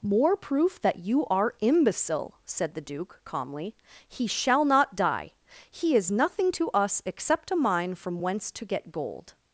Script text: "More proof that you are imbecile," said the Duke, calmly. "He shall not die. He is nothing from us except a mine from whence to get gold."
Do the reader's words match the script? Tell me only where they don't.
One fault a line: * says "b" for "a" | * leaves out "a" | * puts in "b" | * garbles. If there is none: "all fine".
* says "to" for "from"